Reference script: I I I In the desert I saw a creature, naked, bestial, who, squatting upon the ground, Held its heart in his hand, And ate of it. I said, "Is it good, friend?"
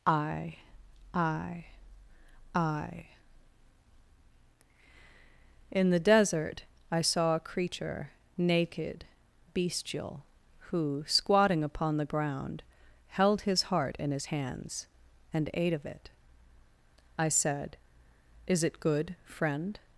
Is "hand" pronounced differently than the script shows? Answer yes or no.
yes